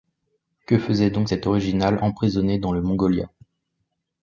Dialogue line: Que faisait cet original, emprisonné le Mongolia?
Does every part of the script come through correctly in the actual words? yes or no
no